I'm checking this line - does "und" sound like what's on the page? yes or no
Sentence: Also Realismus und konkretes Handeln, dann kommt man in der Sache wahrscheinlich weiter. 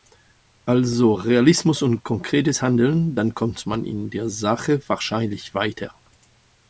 yes